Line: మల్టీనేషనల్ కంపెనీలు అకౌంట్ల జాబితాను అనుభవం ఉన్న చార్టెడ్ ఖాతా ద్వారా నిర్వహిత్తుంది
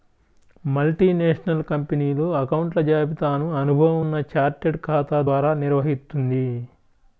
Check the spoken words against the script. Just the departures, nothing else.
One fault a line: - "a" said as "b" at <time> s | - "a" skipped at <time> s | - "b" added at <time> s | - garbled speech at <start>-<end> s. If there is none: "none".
none